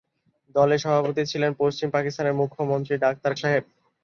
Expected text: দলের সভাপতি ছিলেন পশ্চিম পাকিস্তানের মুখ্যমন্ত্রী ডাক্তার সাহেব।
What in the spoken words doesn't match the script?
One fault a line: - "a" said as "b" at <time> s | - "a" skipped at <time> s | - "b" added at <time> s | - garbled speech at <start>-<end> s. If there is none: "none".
none